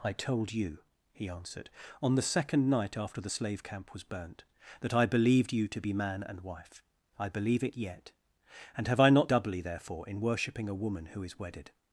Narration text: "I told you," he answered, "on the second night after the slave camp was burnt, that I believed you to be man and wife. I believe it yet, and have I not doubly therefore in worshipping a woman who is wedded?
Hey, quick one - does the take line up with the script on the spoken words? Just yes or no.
yes